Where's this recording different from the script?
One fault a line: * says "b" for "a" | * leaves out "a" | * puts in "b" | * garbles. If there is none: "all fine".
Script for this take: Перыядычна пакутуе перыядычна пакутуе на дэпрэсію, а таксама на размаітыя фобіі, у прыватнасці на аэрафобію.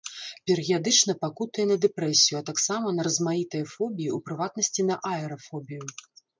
* leaves out "перыядычна пакутуе"